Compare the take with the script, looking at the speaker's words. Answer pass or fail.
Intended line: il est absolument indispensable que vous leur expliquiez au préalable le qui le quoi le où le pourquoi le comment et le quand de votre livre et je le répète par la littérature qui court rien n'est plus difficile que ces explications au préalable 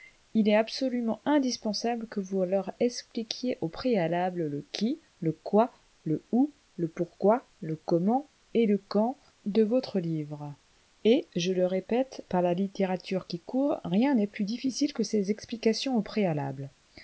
pass